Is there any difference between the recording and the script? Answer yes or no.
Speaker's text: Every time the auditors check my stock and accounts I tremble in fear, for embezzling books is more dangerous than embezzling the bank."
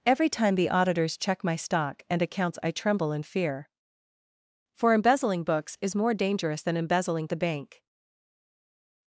no